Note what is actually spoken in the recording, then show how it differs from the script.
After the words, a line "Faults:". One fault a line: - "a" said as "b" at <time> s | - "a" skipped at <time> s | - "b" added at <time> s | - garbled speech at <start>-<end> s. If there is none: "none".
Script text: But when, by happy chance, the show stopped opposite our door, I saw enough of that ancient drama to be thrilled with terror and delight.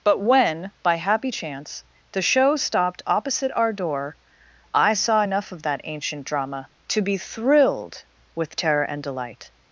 But when, by happy chance, the show stopped opposite our door, I saw enough of that ancient drama to be thrilled with terror and delight.
Faults:
none